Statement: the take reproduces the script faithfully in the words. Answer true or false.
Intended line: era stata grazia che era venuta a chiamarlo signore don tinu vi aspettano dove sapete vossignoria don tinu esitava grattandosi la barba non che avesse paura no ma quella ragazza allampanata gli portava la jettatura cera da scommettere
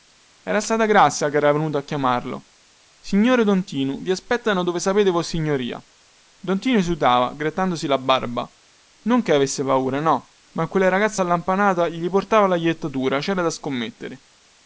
true